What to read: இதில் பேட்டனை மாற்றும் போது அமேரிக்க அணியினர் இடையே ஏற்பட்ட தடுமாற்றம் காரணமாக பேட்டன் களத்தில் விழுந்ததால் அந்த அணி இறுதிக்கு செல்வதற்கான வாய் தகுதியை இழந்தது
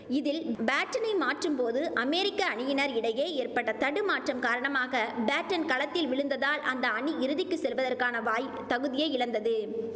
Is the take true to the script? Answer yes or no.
yes